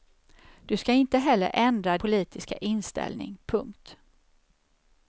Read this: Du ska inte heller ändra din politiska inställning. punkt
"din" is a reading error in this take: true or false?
true